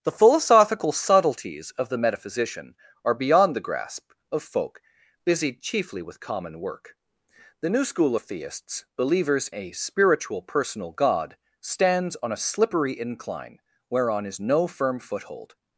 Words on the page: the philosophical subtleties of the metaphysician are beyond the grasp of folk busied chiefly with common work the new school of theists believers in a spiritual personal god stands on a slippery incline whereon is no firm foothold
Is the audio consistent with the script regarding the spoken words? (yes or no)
no